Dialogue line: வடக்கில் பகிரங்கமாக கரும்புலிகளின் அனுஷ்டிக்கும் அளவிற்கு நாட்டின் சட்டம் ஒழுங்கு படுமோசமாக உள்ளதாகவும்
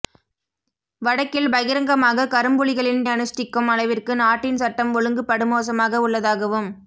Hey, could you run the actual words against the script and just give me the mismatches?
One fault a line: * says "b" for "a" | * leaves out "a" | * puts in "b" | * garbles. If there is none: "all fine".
all fine